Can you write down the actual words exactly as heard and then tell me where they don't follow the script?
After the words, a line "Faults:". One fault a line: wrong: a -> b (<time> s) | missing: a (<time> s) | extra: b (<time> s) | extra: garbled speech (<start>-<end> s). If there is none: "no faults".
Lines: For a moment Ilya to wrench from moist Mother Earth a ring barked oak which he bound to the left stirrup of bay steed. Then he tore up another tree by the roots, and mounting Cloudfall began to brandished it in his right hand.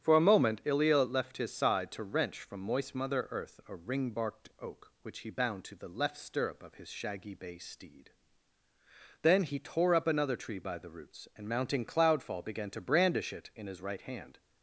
For a moment Ilya left his side to wrench from moist Mother Earth a ring barked oak which he bound to the left stirrup of his shaggy bay steed. Then he tore up another tree by the roots, and mounting Cloudfall began to brandish it in his right hand.
Faults:
extra: left his side (1.0 s)
extra: his shaggy (6.7 s)
wrong: brandished -> brandish (12.8 s)